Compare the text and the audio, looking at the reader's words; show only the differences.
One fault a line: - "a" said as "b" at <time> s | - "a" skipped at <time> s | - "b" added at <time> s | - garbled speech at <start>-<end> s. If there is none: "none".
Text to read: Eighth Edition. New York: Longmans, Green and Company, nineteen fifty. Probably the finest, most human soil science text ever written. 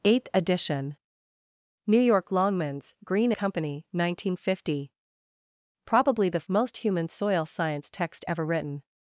- "and" skipped at 3.3 s
- "finest" skipped at 6.5 s